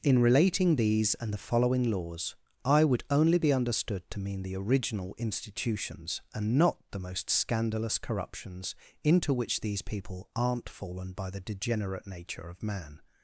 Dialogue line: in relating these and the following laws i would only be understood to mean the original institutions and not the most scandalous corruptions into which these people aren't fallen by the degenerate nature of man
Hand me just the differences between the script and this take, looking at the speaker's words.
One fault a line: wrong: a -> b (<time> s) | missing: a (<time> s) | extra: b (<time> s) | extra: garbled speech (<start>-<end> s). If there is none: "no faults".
no faults